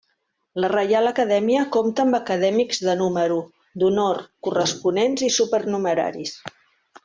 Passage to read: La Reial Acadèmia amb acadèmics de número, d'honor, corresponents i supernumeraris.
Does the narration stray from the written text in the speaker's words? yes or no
yes